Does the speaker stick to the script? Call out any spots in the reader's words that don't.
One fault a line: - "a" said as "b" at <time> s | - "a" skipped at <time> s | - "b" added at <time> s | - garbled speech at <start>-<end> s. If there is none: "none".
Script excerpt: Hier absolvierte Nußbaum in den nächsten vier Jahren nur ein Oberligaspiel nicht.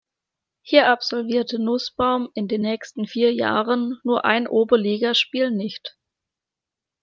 none